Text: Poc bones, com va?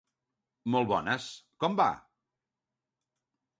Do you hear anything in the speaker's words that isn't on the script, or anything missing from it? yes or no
yes